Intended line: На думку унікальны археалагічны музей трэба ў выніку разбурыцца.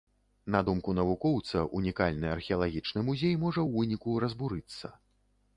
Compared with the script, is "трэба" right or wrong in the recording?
wrong